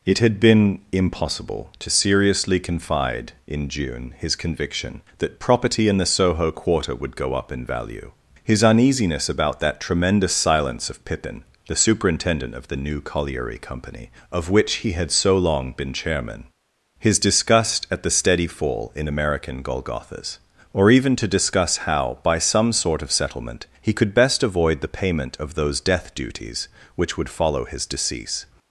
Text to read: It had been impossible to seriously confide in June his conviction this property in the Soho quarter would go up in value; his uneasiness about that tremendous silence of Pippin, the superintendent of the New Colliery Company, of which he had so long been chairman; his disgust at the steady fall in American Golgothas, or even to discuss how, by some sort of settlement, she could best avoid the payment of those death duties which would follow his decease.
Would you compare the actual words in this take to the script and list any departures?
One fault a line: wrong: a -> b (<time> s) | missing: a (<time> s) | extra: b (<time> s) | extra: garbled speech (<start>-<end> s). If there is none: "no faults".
wrong: this -> that (5.2 s)
wrong: she -> he (23.8 s)